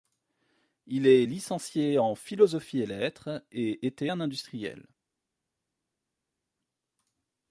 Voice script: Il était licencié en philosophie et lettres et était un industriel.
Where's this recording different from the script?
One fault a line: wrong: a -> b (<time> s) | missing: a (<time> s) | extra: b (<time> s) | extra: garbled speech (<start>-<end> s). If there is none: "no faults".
wrong: était -> est (1.1 s)